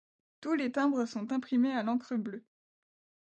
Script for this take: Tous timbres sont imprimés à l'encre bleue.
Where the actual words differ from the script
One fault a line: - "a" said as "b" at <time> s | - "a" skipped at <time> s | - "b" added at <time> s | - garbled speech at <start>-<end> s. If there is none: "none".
- "les" added at 0.6 s